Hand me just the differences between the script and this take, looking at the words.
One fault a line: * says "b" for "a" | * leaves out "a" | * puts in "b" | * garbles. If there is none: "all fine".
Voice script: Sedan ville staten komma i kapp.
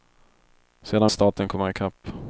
* leaves out "ville"